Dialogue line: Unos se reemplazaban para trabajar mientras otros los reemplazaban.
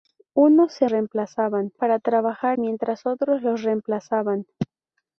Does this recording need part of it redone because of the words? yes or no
no